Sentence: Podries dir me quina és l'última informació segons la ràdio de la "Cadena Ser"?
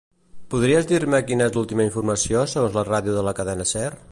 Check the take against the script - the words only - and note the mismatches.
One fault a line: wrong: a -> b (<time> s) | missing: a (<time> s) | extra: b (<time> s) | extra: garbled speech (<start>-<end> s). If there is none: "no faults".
no faults